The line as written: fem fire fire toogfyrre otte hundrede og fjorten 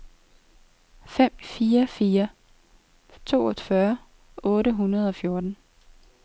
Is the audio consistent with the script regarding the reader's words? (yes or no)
yes